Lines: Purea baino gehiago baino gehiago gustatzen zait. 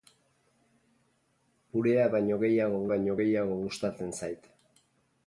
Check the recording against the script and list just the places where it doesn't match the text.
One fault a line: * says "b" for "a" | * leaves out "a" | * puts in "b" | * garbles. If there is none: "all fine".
all fine